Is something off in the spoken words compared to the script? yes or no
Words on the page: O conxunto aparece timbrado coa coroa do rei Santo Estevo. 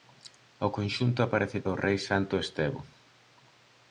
yes